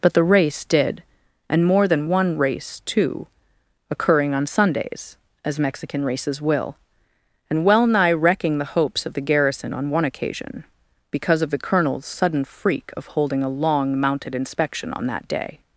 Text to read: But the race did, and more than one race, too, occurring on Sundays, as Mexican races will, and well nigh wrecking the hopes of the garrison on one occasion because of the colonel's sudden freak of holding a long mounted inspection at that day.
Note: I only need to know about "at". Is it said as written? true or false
false